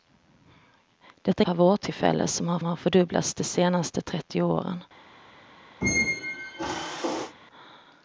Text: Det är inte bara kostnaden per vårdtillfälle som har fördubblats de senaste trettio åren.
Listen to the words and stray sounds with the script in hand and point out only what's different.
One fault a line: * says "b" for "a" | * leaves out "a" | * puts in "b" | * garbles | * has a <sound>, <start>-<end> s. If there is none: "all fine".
* leaves out "inte bara kostnaden"
* puts in "har"
* has a squeak, 5.8-7.3 s